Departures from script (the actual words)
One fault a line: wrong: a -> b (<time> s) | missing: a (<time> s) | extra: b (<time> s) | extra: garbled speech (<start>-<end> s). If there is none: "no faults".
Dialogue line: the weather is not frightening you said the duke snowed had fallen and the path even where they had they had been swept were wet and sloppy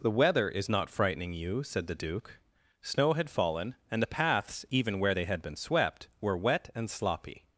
wrong: snowed -> snow (2.8 s)
wrong: path -> paths (4.1 s)
missing: they had (5.4 s)